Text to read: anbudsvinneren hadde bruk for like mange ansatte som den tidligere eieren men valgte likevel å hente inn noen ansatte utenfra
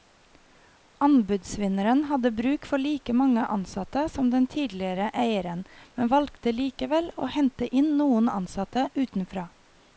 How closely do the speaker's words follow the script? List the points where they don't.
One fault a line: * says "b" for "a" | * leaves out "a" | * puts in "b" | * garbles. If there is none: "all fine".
all fine